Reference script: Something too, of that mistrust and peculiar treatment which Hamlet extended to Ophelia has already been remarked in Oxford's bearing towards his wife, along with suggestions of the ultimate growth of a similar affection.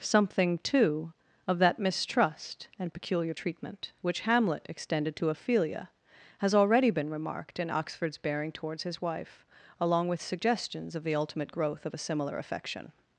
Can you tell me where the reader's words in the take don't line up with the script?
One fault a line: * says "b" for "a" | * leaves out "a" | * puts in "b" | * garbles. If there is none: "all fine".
all fine